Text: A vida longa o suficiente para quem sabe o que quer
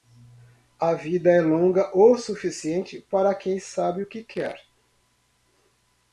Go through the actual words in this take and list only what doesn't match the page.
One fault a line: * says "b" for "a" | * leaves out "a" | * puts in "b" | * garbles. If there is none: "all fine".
* puts in "é"